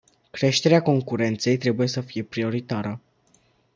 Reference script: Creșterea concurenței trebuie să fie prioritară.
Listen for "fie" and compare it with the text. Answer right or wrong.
right